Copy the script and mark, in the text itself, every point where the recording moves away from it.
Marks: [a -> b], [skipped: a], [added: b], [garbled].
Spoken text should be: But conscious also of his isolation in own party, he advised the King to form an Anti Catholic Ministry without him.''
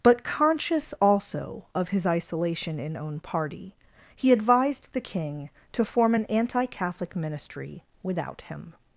But conscious also of his isolation in own party, he advised the King to form an Anti Catholic Ministry without him.''